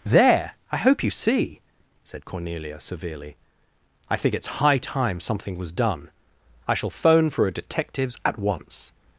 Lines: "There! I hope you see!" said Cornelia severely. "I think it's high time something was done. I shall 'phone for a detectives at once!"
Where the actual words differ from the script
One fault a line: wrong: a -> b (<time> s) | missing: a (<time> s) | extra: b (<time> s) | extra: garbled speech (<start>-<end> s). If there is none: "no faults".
no faults